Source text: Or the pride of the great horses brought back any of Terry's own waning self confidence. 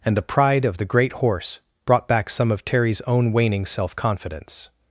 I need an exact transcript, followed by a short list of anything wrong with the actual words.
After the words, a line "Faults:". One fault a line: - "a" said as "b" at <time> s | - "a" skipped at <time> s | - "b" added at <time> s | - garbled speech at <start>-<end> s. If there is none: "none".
And the pride of the great horse brought back some of Terry's own waning self confidence.
Faults:
- "Or" said as "And" at 0.0 s
- "horses" said as "horse" at 1.1 s
- "any" said as "some" at 2.3 s